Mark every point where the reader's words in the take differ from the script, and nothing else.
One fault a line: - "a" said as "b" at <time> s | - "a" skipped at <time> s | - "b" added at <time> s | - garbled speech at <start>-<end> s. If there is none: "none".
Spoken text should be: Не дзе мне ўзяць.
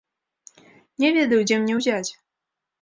- "ведаю" added at 1.2 s